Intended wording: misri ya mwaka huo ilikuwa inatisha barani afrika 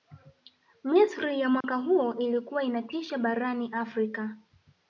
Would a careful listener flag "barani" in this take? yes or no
no